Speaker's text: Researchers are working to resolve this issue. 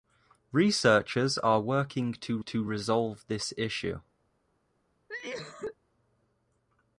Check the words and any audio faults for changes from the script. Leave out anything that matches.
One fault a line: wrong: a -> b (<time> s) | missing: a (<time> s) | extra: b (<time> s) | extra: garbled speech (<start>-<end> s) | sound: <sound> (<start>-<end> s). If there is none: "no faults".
extra: to (2.4 s)
sound: cough (5.1-5.8 s)